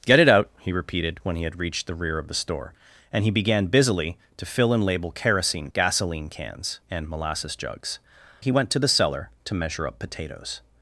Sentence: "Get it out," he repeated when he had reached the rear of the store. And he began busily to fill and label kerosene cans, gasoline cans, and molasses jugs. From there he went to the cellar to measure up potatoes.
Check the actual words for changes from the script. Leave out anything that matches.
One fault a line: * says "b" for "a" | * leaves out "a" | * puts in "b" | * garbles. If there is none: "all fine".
* leaves out "cans"
* leaves out "From there"